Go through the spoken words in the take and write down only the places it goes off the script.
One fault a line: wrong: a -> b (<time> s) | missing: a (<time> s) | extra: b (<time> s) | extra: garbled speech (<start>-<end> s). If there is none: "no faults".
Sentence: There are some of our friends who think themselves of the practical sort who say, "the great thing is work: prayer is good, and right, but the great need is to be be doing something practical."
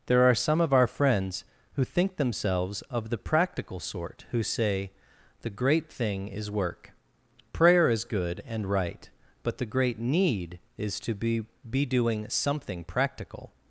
no faults